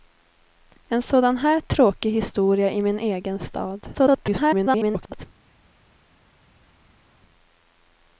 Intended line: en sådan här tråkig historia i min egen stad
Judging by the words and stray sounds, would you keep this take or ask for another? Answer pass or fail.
fail